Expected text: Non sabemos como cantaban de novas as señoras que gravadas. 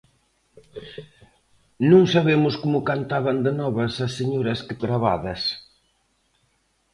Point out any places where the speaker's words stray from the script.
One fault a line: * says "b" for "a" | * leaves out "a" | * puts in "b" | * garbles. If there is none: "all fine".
all fine